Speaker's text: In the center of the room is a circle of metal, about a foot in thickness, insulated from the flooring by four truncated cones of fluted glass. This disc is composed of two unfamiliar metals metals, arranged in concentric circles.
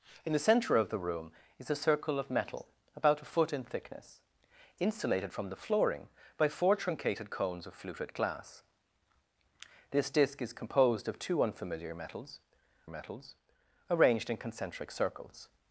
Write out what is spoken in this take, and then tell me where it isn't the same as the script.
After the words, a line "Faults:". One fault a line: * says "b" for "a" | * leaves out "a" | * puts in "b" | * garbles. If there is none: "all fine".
In the center of the room is a circle of metal, about a foot in thickness, insulated from the flooring by four truncated cones of fluted glass. This disc is composed of two unfamiliar metals metals, arranged in concentric circles.
Faults:
all fine